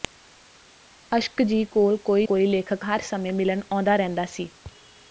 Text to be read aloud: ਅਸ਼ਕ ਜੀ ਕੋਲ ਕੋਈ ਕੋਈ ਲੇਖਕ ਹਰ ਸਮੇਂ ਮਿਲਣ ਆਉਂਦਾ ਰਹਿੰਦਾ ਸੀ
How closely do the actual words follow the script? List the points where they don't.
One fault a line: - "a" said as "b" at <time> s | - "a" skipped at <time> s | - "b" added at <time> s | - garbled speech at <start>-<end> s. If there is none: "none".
none